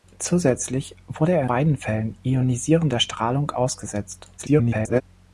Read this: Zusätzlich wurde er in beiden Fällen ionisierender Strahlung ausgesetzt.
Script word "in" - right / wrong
wrong